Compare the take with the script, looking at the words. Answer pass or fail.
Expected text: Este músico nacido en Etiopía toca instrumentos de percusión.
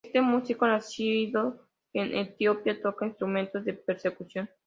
pass